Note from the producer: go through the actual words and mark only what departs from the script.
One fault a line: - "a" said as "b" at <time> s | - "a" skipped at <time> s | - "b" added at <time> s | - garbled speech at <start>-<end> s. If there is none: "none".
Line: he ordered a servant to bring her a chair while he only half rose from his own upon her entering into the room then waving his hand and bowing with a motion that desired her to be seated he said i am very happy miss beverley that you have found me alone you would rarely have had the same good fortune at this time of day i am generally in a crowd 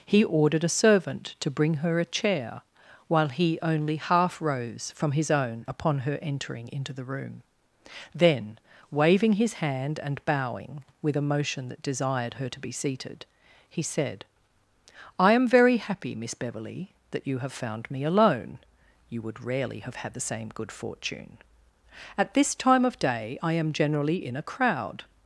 none